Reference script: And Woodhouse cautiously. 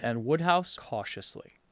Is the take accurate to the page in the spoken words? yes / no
yes